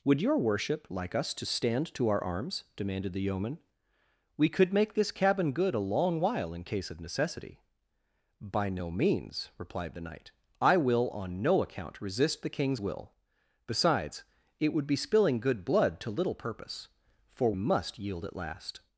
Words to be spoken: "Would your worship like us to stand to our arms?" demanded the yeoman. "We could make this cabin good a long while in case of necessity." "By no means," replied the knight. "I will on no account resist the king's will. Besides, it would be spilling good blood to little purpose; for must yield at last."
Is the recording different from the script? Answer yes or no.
no